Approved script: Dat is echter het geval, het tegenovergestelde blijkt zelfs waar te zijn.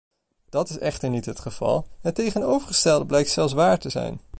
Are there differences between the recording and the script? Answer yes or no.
yes